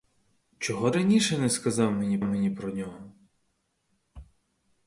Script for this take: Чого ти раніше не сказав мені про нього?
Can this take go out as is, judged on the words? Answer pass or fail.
fail